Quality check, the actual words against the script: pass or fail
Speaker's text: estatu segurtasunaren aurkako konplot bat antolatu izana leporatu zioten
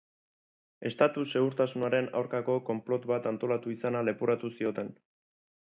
pass